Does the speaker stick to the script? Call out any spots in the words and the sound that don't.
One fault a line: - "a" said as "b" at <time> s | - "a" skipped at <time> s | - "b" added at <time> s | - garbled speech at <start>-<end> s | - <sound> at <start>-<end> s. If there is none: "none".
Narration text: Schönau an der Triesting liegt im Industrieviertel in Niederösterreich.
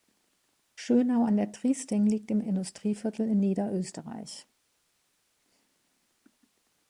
none